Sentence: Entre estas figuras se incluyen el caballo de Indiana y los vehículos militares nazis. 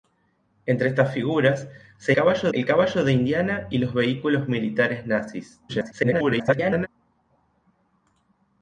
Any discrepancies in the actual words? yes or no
yes